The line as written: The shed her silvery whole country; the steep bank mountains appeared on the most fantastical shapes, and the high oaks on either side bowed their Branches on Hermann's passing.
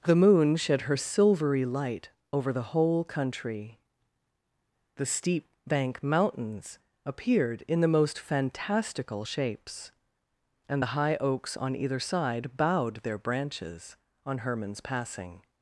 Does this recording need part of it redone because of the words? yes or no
yes